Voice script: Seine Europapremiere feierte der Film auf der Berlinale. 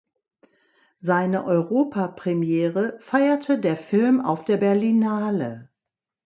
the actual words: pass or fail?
pass